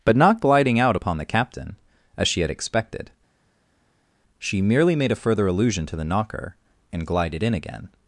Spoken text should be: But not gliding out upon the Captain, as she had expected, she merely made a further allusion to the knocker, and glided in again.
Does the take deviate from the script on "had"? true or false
false